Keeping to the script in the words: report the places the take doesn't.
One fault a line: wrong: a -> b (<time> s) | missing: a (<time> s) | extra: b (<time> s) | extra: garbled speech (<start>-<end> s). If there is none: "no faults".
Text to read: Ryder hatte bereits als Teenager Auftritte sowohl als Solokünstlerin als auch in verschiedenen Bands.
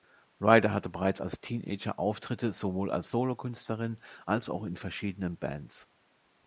no faults